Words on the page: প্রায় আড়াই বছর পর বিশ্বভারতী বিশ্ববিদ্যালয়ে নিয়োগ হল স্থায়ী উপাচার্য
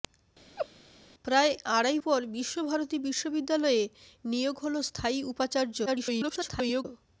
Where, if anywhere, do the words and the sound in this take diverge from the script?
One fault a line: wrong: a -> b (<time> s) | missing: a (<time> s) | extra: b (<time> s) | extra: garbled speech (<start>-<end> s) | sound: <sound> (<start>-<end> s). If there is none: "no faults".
sound: laugh (0.6-0.7 s)
missing: বছর (2.0 s)
extra: garbled speech (5.9-6.9 s)